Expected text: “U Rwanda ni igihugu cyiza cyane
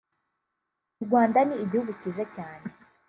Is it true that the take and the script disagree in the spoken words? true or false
false